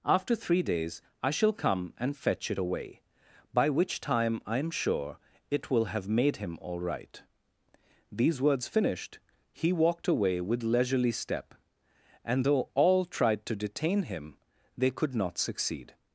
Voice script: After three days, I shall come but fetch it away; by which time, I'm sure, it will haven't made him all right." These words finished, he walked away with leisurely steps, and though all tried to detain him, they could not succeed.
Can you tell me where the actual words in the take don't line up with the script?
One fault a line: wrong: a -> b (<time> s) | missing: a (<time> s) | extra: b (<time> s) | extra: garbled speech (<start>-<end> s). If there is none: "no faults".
wrong: but -> and (2.0 s)
wrong: haven't -> have (5.9 s)
wrong: steps -> step (11.1 s)